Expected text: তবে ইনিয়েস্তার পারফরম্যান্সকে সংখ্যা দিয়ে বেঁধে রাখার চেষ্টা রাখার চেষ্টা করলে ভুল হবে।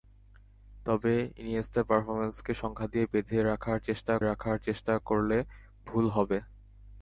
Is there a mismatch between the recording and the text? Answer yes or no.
no